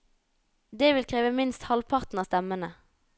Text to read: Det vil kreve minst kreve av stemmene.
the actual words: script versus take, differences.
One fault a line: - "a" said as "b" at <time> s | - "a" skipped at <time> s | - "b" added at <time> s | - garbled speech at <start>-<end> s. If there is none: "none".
- "kreve" said as "halvparten" at 1.7 s